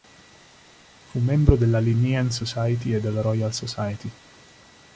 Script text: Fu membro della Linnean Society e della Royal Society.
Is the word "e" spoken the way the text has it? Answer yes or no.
yes